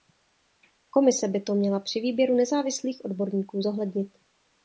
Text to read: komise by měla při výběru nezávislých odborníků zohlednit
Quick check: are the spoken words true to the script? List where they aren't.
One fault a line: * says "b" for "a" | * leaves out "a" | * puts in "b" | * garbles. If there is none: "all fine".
* puts in "to"